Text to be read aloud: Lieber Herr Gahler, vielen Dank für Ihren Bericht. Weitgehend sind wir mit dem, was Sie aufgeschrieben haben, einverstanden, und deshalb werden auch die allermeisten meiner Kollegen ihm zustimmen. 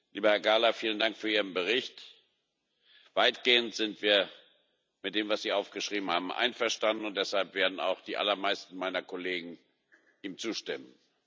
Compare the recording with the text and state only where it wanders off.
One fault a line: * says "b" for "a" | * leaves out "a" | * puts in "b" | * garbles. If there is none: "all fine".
all fine